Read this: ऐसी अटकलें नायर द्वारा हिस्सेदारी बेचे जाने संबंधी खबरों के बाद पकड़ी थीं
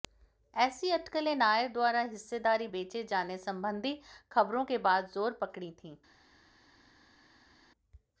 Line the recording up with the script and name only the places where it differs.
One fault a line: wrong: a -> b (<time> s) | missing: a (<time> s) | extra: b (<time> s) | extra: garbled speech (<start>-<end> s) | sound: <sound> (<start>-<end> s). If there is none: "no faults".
extra: जोर (5.1 s)